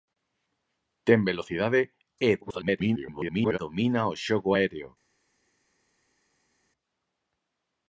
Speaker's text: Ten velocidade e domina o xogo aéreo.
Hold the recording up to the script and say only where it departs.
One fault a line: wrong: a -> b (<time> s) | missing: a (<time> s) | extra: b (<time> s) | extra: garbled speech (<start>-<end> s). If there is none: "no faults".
extra: garbled speech (2.4-3.6 s)